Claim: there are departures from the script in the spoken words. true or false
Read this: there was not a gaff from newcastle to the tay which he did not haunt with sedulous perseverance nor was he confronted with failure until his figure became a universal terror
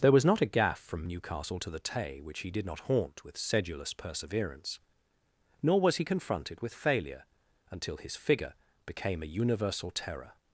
false